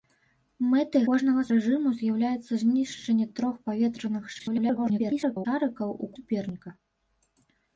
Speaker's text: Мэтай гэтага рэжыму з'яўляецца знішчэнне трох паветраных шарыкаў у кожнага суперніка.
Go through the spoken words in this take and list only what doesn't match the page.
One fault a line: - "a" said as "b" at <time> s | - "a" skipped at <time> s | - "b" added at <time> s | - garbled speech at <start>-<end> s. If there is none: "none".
- "гэтага" said as "кожнага" at 1.1 s
- garbled speech at 4.4-5.5 s
- "кожнага" skipped at 6.2 s